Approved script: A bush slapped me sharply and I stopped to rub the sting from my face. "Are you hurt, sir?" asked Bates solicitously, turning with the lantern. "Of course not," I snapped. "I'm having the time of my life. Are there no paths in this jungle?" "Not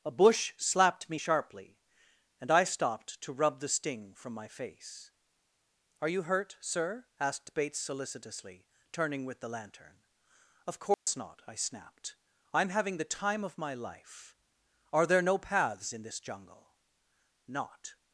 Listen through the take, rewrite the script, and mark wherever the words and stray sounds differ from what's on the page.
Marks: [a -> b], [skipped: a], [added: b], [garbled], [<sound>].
A bush slapped me sharply and I stopped to rub the sting from my face. "Are you hurt, sir?" asked Bates solicitously, turning with the lantern. "Of course [dropout] not," I snapped. "I'm having the time of my life. Are there no paths in this jungle?" "Not